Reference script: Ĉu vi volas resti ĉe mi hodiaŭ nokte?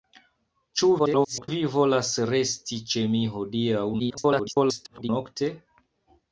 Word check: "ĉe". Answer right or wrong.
right